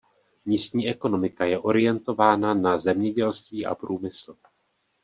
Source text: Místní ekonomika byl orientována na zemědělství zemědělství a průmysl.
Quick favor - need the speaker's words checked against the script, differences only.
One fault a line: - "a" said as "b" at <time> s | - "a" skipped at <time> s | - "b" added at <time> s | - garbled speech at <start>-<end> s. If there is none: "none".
- "byl" said as "je" at 1.4 s
- "zemědělství" skipped at 3.6 s